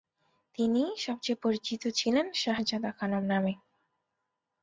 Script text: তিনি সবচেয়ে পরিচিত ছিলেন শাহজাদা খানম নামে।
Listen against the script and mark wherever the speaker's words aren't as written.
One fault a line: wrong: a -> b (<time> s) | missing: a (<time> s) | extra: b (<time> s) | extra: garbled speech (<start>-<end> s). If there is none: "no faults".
no faults